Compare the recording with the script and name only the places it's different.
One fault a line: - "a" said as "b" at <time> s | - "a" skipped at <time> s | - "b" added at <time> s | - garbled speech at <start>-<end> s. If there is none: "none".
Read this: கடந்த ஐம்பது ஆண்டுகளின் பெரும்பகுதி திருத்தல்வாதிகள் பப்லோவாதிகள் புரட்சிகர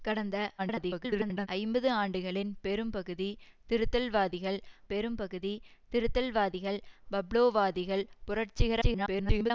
- garbled speech at 0.6-1.5 s
- "பெரும்பகுதி திருத்தல்வாதிகள்" added at 4.9 s
- garbled speech at 8.8-9.5 s